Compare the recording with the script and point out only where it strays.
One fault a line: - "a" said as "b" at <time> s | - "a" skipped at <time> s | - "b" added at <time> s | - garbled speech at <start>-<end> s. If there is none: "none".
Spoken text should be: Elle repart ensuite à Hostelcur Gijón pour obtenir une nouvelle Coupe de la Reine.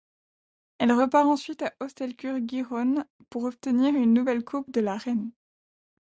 none